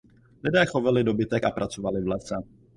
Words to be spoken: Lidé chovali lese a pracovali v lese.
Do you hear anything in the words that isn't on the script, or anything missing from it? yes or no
yes